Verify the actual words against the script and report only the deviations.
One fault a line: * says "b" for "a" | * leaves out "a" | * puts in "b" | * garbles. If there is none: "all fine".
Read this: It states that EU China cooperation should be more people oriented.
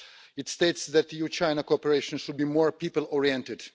all fine